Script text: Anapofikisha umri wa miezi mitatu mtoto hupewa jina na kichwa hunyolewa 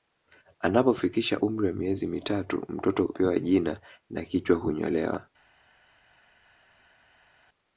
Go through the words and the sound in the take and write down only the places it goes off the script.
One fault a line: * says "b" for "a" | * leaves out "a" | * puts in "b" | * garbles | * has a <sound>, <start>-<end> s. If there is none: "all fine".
all fine